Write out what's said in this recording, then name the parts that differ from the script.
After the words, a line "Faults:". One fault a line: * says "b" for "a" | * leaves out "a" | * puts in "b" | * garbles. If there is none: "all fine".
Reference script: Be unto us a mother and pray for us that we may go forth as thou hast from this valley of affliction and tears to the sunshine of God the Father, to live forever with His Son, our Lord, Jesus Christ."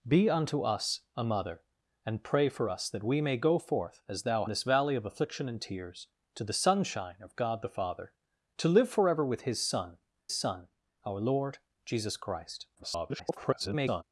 Be unto us a mother and pray for us that we may go forth as thou this valley of affliction and tears to the sunshine of God the Father, to live forever with His Son Son, our Lord, Jesus Christ." [garbled]
Faults:
* leaves out "hast from"
* puts in "Son"
* garbles